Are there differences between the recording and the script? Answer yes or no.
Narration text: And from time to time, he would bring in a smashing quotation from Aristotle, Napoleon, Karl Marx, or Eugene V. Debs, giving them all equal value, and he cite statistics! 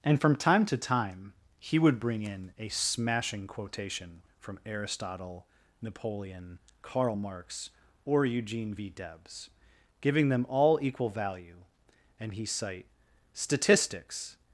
no